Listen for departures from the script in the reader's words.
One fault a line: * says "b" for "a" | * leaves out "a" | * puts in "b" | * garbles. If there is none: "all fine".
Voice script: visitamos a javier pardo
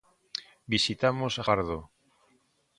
* leaves out "javier"